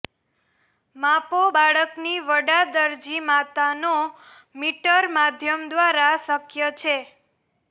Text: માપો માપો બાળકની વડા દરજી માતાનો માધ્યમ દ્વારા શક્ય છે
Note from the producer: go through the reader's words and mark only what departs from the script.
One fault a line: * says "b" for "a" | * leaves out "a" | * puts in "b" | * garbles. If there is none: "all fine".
* leaves out "માપો"
* puts in "મીટર"